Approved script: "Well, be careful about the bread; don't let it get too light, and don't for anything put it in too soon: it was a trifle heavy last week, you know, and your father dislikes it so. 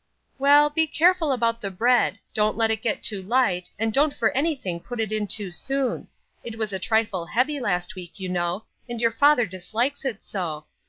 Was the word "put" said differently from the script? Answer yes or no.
no